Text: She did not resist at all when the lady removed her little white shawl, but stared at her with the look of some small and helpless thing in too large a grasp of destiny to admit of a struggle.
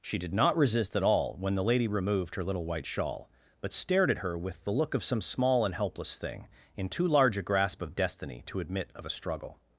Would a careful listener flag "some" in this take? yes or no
no